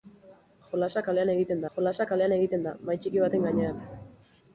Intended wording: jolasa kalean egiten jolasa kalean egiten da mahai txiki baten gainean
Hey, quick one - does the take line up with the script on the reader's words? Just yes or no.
yes